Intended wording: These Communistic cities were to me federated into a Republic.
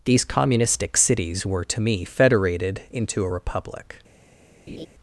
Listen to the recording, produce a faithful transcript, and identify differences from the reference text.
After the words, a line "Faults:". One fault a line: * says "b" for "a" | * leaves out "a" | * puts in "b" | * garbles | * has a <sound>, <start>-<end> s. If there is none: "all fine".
These Communistic cities were to me federated into a Republic.
Faults:
* has a laugh, 4.7-4.9 s